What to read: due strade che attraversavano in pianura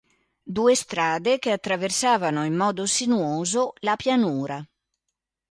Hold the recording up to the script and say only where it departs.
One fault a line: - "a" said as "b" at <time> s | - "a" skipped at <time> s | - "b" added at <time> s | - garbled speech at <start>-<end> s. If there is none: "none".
- "modo sinuoso la" added at 2.6 s